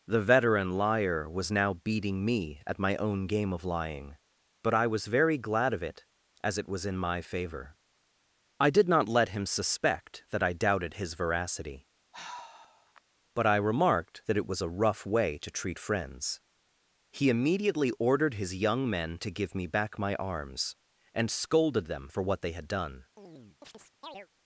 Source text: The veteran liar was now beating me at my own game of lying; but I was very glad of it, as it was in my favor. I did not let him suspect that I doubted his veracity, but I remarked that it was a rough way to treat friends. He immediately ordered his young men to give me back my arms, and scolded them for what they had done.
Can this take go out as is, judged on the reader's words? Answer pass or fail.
pass